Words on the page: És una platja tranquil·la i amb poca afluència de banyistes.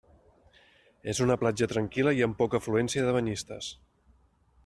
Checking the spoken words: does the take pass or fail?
pass